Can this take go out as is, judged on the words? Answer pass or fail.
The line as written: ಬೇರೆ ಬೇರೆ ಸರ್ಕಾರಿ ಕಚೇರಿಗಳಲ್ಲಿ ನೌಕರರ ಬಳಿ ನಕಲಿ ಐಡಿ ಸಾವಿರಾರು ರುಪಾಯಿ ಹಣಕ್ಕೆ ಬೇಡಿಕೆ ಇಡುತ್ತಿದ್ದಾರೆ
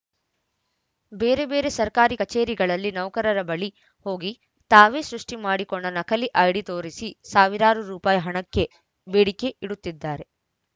fail